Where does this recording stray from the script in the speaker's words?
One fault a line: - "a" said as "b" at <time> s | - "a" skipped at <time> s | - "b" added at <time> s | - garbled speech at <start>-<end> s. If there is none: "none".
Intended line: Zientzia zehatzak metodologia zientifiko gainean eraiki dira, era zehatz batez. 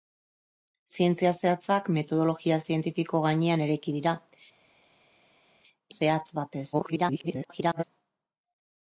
- "era" skipped at 4.2 s
- garbled speech at 6.7-7.8 s